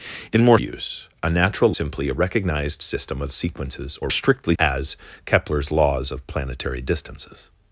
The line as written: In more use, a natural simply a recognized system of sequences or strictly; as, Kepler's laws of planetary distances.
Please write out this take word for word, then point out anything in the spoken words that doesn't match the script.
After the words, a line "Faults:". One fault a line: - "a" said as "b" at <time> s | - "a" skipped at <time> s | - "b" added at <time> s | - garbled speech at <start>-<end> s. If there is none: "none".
In more use, a natural simply a recognized system of sequences or strictly; as, Kepler's laws of planetary distances.
Faults:
none